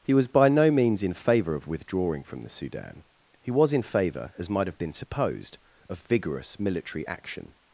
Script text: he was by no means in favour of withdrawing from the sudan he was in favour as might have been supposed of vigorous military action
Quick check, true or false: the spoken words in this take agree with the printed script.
true